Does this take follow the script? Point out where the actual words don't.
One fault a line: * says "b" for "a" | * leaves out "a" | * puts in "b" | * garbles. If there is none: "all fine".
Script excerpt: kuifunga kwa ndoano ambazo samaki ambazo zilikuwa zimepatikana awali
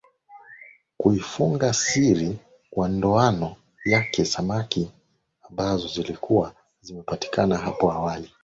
* puts in "siri"
* says "yake" for "ambazo"
* puts in "hapo"